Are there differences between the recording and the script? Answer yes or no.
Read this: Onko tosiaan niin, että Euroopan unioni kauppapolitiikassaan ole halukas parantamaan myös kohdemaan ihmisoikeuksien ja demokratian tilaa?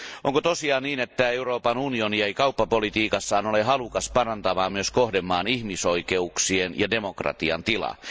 yes